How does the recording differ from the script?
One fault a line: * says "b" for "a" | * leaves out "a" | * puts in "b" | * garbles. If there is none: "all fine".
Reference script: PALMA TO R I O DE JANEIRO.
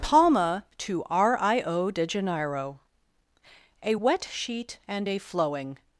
* puts in "A wet sheet and a flowing"